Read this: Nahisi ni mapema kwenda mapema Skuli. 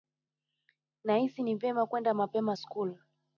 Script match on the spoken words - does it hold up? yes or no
no